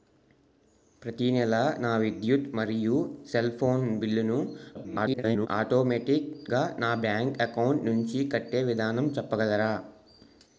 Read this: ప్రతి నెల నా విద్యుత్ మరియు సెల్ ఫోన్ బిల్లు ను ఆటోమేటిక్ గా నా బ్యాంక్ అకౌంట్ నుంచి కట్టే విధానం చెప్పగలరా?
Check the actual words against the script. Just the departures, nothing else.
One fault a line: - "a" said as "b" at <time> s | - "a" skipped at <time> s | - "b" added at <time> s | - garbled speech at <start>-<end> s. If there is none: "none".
- garbled speech at 4.7-5.5 s